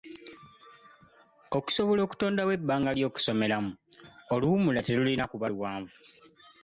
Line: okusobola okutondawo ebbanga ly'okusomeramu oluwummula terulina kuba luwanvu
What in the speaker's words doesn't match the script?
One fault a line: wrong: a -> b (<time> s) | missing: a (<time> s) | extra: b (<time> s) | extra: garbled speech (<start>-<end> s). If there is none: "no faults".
no faults